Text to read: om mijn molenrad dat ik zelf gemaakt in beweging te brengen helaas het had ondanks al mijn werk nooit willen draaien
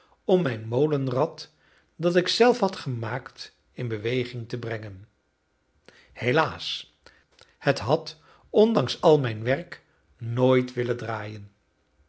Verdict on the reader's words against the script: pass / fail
fail